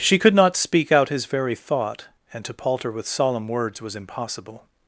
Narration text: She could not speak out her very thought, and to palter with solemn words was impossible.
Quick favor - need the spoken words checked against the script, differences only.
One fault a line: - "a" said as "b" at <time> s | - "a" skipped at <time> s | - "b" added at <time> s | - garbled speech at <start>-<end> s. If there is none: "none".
- "her" said as "his" at 1.1 s